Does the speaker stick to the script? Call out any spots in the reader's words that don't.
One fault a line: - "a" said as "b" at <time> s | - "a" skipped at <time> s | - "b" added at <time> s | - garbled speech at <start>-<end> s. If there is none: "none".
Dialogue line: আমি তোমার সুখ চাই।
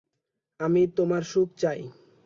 none